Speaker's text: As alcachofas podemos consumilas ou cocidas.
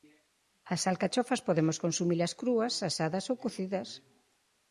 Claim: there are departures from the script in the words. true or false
true